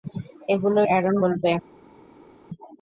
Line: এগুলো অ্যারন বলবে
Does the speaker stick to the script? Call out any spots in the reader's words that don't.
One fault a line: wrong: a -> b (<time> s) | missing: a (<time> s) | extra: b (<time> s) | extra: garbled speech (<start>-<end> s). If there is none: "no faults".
no faults